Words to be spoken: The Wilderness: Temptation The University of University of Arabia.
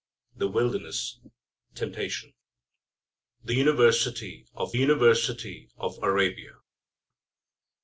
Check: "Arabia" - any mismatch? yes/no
no